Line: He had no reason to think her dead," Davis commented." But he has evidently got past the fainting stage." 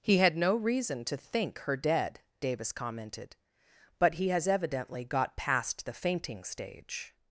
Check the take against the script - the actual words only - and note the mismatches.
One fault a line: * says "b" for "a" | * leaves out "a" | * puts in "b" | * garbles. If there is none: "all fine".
all fine